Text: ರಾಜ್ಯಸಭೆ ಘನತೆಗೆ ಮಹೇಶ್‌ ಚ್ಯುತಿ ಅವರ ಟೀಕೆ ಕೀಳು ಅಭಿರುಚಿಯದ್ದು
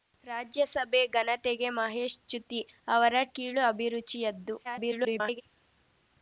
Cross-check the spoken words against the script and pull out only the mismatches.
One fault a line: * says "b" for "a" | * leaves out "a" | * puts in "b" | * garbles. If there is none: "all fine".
* leaves out "ಟೀಕೆ"
* garbles